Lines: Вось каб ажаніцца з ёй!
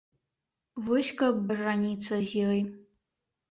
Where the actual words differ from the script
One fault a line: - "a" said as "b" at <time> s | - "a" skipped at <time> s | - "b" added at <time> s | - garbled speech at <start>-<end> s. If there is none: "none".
none